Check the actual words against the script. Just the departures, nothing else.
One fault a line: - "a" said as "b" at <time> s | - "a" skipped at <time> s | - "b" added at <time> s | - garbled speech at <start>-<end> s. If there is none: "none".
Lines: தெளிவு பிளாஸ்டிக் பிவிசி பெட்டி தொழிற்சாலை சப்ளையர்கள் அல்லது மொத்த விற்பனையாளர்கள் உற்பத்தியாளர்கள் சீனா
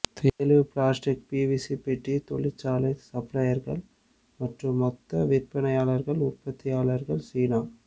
- "அல்லது" said as "மற்றும்" at 4.4 s